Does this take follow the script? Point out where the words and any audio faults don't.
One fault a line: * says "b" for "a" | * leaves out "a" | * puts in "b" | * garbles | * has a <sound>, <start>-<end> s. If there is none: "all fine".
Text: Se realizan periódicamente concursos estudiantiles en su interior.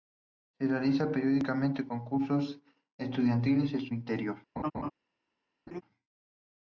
* has a laugh, 4.6-4.9 s
* has a laugh, 5.7-5.8 s